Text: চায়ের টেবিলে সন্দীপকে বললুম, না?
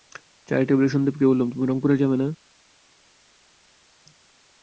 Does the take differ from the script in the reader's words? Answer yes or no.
yes